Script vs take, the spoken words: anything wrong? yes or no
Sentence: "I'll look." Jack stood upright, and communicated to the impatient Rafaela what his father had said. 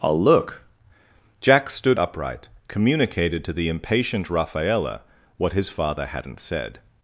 yes